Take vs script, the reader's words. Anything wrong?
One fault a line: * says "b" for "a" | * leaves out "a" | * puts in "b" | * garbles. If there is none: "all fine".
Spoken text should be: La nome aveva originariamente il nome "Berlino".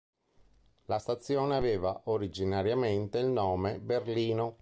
* says "stazione" for "nome"